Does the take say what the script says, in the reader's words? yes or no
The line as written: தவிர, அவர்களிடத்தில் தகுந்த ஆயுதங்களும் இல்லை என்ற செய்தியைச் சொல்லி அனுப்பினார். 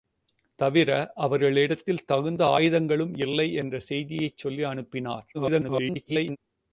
no